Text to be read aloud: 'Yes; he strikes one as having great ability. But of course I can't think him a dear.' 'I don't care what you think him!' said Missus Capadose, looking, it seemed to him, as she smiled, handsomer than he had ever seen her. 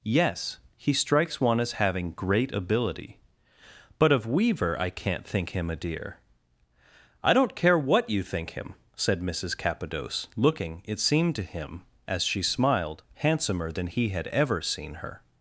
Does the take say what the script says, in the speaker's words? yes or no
no